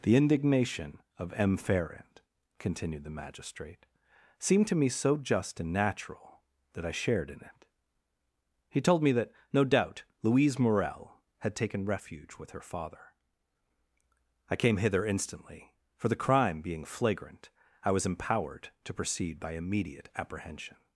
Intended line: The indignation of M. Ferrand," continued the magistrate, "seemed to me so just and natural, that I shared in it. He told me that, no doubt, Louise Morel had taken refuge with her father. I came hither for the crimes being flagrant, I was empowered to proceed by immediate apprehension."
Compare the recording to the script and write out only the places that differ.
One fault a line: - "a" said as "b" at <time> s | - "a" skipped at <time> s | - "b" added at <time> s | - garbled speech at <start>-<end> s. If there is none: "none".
- "instantly" added at 15.1 s
- "crimes" said as "crime" at 16.1 s